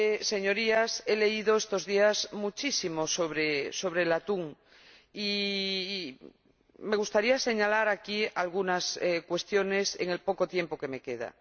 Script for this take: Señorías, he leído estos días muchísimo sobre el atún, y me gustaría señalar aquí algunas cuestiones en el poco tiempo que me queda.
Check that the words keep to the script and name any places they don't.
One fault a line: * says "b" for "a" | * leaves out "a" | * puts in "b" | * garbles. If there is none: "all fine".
all fine